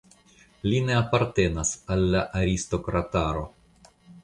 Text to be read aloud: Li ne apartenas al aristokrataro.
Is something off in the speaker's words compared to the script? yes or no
yes